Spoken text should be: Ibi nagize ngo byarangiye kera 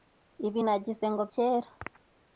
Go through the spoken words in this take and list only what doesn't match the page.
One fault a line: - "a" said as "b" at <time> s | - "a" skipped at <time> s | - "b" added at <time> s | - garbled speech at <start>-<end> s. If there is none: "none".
- "byarangiye" skipped at 1.2 s